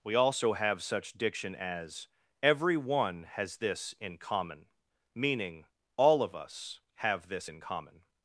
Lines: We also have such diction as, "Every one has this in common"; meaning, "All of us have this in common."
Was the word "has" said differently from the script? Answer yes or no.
no